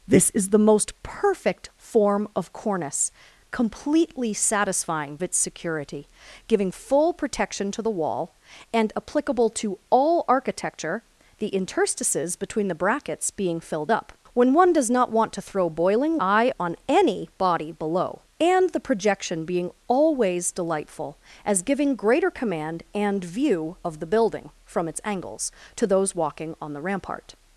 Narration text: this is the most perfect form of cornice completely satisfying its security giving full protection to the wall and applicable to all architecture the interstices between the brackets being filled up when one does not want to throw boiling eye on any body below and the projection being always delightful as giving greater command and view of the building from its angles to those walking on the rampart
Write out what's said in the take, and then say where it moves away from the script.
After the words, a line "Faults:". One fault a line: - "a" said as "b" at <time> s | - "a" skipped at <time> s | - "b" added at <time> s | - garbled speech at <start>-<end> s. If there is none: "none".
this is the most perfect form of cornice completely satisfying its security giving full protection to the wall and applicable to all architecture the interstices between the brackets being filled up when one does not want to throw boiling eye on any body below and the projection being always delightful as giving greater command and view of the building from its angles to those walking on the rampart
Faults:
none